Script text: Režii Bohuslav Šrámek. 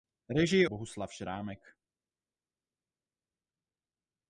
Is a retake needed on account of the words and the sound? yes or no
no